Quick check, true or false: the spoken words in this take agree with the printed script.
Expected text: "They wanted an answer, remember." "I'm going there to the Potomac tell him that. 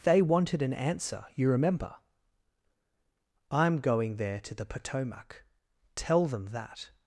false